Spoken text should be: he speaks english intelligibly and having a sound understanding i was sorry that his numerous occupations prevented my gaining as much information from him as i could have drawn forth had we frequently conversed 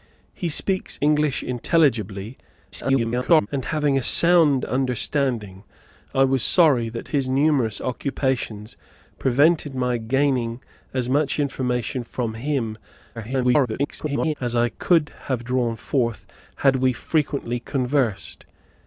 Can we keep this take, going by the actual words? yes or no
no